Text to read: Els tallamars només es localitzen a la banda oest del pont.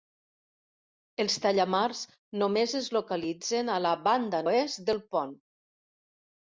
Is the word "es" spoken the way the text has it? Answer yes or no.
yes